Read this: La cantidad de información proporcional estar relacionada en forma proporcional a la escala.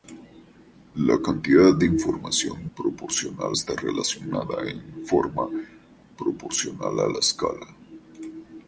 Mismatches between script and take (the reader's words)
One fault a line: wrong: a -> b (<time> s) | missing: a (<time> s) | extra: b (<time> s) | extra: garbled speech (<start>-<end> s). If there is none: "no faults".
no faults